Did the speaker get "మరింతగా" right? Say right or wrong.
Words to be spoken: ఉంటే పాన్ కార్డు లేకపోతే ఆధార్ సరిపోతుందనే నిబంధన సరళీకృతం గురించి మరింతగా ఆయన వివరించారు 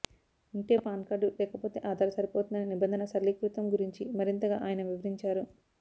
right